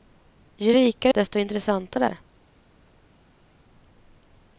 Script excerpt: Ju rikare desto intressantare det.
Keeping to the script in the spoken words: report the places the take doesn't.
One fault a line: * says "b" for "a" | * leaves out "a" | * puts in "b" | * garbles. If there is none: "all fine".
all fine